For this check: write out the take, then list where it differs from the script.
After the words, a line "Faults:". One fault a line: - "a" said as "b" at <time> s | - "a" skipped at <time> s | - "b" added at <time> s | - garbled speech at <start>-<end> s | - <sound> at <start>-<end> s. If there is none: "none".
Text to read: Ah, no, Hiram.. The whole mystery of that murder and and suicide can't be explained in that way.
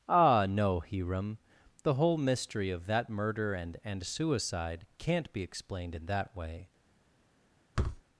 Ah, no, Hiram.. The whole mystery of that murder and and suicide can't be explained in that way.
Faults:
- thud at 7.8-8.0 s